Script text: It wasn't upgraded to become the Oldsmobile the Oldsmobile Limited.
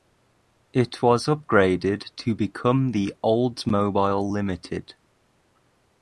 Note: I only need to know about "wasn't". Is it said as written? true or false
false